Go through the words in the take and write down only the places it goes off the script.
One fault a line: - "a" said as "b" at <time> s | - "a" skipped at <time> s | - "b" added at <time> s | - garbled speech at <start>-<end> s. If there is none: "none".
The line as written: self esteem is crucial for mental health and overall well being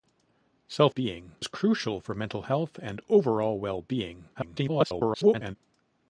- "esteem" said as "being" at 0.9 s
- garbled speech at 4.3-5.6 s